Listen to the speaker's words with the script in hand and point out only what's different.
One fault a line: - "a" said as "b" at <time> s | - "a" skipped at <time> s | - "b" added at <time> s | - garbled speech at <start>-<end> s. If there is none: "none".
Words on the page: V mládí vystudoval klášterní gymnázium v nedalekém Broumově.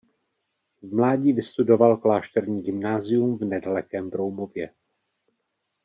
none